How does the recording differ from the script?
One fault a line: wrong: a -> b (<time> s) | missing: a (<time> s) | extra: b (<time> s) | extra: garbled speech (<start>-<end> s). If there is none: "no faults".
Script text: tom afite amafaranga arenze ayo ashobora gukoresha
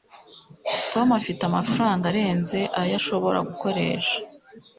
no faults